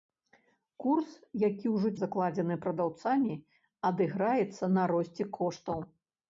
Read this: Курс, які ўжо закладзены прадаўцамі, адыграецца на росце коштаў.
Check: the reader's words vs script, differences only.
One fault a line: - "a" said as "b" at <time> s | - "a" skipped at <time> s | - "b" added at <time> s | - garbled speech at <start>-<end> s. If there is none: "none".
none